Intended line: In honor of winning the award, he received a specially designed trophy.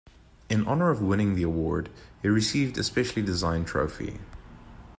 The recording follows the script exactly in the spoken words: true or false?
true